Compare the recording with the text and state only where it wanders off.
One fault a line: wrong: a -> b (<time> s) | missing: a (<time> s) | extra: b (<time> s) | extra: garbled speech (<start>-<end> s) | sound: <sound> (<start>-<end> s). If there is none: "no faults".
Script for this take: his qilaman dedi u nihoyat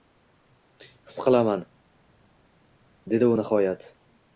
no faults